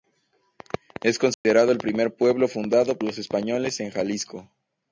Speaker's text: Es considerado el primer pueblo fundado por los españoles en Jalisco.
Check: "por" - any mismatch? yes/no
yes